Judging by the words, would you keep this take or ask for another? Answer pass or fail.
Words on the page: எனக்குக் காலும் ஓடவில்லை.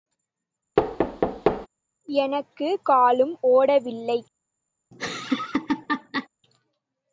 pass